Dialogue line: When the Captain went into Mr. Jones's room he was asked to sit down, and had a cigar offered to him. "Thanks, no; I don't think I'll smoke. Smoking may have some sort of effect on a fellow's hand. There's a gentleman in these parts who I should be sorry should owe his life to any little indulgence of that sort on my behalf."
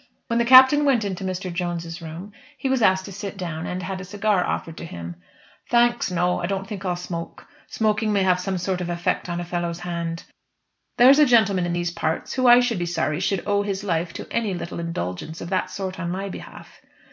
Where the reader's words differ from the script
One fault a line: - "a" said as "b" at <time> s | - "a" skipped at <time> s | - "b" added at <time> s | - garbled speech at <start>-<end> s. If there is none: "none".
none